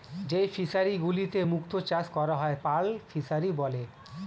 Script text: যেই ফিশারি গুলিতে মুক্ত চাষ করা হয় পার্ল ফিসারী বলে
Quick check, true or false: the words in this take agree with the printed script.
true